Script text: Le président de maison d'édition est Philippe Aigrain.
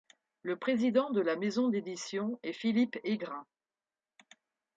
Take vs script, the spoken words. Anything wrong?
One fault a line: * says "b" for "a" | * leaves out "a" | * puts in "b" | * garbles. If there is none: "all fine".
* puts in "la"